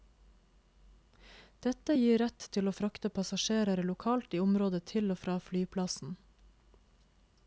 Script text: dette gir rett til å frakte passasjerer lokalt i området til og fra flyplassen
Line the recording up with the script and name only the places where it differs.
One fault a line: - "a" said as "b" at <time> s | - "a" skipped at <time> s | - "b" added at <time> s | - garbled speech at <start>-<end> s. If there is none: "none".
none